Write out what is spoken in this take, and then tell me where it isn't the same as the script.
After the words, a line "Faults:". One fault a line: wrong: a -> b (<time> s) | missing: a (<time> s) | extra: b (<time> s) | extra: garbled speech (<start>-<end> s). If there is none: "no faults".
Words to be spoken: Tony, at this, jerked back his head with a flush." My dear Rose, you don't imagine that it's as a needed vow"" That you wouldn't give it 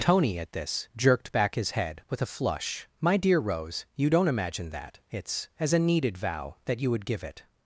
Tony, at this, jerked back his head with a flush." My dear Rose, you don't imagine that it's as a needed vow"" That you would give it
Faults:
wrong: wouldn't -> would (6.9 s)